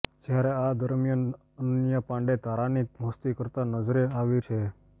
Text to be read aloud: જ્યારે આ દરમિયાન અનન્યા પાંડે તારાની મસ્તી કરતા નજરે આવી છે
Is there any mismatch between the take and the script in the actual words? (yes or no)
no